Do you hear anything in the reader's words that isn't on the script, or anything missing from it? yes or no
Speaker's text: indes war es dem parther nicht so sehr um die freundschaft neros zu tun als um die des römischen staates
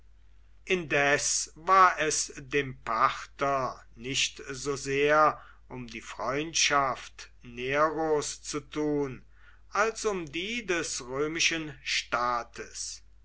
no